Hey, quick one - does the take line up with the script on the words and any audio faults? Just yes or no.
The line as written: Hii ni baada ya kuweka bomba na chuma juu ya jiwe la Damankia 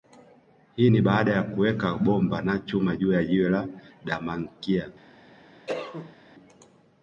no